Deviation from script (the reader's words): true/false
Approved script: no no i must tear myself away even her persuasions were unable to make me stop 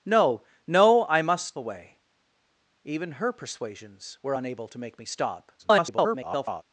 true